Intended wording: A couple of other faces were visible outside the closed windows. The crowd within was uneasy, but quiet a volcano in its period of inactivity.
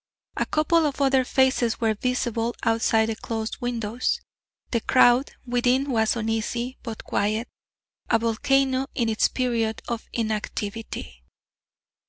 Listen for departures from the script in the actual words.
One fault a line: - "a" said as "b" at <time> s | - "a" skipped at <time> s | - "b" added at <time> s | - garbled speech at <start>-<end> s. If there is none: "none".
none